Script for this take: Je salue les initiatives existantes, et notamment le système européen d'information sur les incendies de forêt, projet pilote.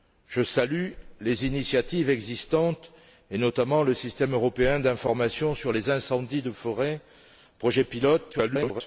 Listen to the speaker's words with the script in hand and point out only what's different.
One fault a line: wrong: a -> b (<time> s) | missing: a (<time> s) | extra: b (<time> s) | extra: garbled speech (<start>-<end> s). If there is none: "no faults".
extra: garbled speech (8.3-8.8 s)